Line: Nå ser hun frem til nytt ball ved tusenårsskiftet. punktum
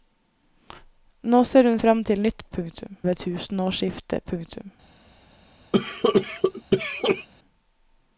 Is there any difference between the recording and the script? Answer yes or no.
yes